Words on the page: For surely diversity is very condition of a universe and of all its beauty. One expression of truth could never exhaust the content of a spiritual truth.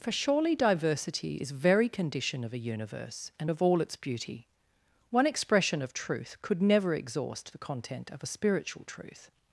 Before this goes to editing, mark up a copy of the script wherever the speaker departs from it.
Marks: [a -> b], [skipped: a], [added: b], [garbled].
For surely diversity is very condition of a universe and of all its beauty. One expression of truth could never exhaust the content of a spiritual truth.